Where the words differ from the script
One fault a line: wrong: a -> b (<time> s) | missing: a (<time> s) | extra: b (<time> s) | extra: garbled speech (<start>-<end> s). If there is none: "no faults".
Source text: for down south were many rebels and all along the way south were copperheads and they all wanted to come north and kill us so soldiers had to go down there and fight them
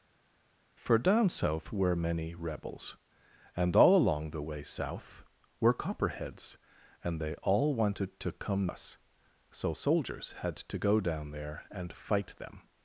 missing: north and kill (8.7 s)